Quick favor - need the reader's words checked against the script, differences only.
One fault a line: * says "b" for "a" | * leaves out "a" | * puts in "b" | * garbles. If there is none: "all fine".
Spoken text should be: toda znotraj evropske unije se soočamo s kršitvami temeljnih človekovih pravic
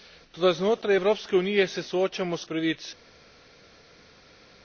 * leaves out "kršitvami temeljnih človekovih"